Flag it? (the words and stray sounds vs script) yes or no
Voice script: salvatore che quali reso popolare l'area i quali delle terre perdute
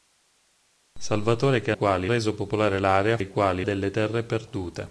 no